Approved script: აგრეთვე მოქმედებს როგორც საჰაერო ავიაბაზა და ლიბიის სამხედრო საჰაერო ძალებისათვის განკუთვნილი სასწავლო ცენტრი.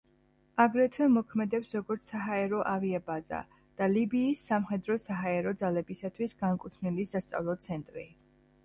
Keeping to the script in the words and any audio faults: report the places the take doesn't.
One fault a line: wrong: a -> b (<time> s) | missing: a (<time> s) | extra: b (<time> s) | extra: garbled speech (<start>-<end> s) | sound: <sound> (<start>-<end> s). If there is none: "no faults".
no faults